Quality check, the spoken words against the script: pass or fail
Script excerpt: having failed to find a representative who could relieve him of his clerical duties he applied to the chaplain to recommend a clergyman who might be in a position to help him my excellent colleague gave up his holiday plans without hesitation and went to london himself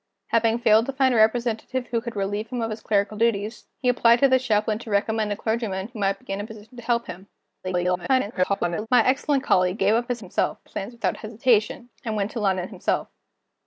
fail